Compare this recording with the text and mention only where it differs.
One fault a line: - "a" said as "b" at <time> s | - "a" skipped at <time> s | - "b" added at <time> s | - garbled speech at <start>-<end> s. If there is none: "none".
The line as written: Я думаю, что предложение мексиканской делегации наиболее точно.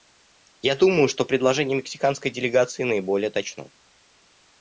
none